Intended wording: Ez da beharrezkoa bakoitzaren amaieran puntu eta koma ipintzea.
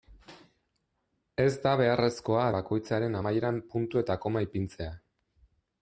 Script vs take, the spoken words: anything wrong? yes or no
no